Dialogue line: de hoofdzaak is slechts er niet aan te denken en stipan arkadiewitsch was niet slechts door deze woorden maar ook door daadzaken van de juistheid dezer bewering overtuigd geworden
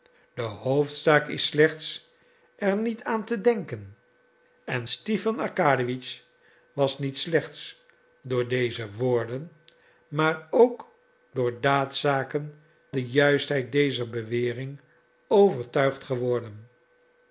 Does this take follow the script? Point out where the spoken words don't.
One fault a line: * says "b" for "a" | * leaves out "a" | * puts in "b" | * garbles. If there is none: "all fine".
* leaves out "van"